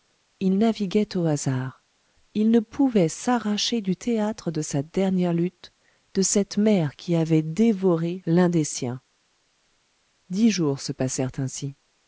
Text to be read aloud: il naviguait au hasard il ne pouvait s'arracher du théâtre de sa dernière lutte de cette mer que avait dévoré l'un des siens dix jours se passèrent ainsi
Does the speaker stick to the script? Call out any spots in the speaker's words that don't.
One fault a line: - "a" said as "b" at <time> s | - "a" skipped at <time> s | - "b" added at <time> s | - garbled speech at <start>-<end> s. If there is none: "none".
- "que" said as "qui" at 6.9 s